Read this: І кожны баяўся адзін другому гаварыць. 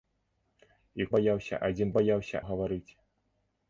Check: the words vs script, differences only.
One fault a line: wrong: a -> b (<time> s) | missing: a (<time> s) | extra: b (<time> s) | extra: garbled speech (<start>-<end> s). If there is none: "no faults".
missing: кожны (1.1 s)
wrong: другому -> баяўся (2.0 s)